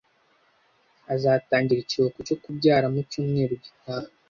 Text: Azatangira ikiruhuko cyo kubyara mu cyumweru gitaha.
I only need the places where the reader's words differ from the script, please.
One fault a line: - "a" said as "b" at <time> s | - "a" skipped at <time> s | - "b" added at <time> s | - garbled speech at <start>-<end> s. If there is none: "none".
none